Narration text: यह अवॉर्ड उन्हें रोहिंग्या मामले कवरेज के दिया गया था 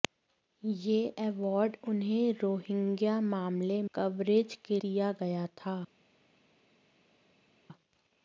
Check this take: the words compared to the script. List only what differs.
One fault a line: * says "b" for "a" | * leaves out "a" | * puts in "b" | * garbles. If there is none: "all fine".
all fine